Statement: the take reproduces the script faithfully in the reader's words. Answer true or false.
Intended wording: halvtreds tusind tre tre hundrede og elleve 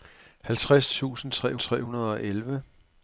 true